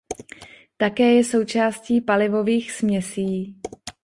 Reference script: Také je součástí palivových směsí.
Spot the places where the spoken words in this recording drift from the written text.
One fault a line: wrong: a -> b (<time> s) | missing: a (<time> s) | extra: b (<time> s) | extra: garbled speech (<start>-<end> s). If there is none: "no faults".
no faults